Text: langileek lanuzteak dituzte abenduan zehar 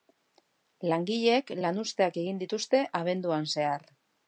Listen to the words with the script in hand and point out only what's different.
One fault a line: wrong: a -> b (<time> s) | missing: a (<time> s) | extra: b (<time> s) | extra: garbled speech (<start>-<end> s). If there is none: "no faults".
extra: egin (2.2 s)